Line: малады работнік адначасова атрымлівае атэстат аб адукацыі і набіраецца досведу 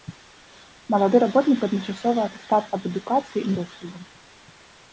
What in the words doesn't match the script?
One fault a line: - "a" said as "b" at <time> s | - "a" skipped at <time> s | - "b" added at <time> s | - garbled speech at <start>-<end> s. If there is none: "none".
- "атрымлівае" skipped at 2.2 s
- "набіраецца" skipped at 3.5 s